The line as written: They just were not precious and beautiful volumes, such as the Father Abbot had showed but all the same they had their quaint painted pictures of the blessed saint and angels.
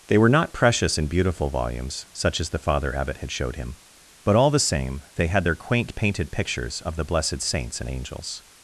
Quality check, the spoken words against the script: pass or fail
fail